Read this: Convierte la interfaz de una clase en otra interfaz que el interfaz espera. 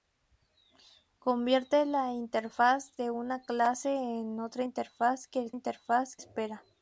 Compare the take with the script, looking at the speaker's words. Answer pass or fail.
pass